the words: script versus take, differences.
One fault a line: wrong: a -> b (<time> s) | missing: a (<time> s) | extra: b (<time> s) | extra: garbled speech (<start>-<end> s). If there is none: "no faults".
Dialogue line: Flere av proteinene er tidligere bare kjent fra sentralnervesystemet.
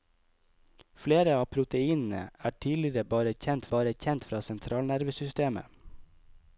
extra: bare kjent (3.7 s)